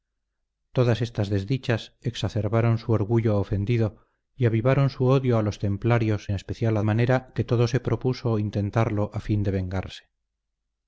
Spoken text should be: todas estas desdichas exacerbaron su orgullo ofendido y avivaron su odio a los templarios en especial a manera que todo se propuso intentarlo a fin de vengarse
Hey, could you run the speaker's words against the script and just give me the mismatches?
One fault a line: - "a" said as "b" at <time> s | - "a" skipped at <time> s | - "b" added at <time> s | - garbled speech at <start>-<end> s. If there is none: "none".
none